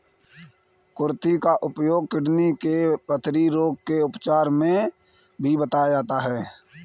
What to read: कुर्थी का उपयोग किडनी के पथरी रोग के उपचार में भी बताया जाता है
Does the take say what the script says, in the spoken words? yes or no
yes